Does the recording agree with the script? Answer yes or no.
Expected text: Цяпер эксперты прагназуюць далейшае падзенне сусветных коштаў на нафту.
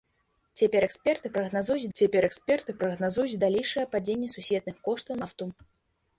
no